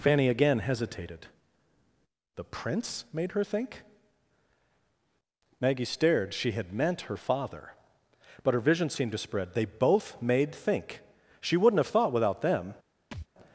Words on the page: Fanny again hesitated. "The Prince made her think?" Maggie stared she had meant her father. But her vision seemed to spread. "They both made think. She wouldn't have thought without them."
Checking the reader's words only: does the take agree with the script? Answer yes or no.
yes